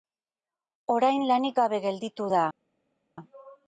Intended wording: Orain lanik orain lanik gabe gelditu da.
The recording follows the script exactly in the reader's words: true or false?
false